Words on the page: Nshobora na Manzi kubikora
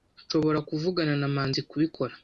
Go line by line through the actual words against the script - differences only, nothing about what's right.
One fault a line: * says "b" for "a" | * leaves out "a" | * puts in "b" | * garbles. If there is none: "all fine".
* puts in "kuvugana"